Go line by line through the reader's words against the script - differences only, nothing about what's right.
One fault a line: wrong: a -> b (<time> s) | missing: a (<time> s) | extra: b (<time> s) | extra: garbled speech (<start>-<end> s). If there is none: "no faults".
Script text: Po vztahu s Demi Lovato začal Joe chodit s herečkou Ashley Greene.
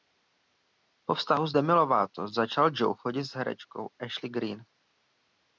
no faults